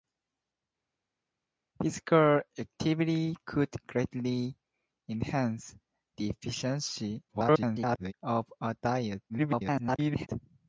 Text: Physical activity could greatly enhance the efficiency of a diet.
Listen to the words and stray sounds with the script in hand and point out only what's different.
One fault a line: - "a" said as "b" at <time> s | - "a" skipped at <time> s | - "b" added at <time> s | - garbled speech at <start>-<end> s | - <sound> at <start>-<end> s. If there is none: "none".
- garbled speech at 7.3-8.1 s
- garbled speech at 9.3-10.3 s